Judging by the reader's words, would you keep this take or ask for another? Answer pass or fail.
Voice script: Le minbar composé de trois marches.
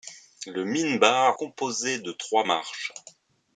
pass